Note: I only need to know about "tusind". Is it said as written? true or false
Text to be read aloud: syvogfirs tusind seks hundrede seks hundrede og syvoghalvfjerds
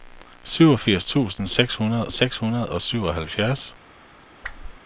true